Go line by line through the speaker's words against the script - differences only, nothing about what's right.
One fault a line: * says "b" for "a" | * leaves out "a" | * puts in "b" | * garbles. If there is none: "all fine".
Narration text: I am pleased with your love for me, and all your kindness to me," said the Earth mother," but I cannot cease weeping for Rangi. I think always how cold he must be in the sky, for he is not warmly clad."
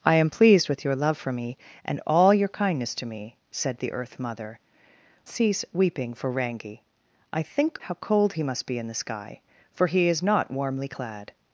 * leaves out "but I cannot"
* leaves out "always"